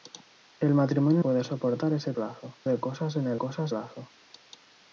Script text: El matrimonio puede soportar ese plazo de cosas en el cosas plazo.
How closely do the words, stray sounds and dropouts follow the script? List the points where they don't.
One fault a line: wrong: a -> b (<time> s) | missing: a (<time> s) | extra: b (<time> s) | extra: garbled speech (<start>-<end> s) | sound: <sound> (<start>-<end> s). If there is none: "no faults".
no faults